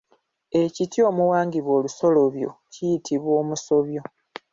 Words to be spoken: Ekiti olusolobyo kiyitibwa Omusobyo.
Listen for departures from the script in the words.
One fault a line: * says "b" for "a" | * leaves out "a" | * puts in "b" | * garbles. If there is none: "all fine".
* puts in "omuwangibwa"